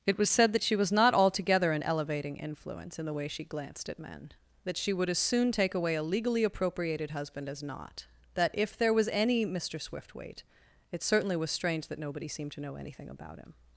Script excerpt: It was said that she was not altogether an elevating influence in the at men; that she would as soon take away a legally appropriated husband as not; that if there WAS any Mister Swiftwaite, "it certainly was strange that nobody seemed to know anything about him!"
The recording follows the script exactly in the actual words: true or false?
false